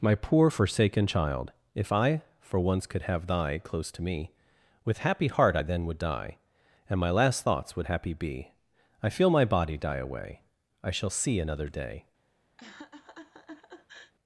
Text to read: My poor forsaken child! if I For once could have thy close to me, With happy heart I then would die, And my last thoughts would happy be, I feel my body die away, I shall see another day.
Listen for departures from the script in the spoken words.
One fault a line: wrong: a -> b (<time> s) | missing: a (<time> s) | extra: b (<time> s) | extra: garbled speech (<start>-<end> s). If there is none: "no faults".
no faults